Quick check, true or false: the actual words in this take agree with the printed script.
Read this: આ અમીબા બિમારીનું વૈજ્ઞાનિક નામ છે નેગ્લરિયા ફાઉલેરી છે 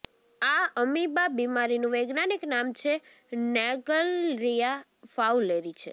true